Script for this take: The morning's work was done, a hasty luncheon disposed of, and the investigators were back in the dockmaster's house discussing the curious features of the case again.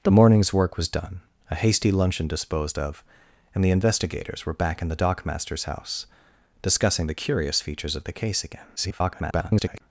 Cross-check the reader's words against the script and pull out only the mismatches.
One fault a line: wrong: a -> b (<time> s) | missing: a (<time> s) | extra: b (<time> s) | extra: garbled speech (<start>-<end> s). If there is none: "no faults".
extra: garbled speech (8.8-9.8 s)